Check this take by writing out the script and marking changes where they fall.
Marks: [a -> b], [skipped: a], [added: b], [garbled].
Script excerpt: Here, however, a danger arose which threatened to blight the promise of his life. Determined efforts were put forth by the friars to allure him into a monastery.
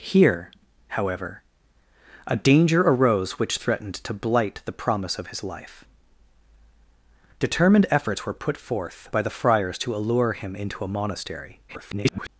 Here, however, a danger arose which threatened to blight the promise of his life. Determined efforts were put forth by the friars to allure him into a monastery. [garbled]